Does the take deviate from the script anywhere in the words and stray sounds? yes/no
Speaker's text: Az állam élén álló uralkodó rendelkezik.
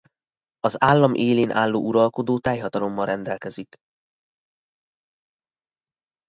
yes